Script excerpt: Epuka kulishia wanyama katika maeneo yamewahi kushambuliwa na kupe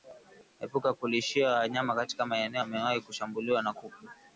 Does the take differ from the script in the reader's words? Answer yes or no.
no